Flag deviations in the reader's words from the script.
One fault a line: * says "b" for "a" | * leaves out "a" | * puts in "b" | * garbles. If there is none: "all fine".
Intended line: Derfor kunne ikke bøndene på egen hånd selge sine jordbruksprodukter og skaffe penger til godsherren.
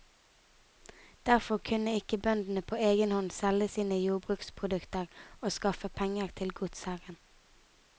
all fine